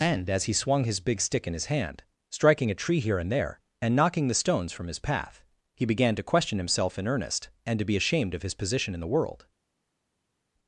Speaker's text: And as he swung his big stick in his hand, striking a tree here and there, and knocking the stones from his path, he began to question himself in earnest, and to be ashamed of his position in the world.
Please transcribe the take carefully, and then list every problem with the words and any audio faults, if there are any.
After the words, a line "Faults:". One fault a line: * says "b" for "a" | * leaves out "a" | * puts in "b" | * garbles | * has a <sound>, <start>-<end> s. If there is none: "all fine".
And as he swung his big stick in his hand, striking a tree here and there, and knocking the stones from his path, he began to question himself in earnest, and to be ashamed of his position in the world.
Faults:
all fine